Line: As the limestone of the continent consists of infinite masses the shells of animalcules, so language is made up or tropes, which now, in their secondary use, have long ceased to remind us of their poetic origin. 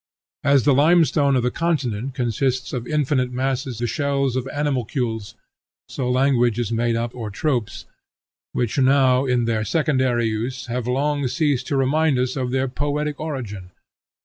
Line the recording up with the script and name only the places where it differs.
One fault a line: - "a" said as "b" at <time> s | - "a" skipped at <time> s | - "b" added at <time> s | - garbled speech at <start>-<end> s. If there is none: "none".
none